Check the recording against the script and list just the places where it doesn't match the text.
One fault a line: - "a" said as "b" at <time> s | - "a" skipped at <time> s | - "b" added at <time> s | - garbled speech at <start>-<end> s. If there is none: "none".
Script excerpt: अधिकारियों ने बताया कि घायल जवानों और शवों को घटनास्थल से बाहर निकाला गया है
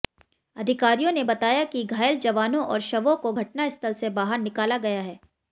none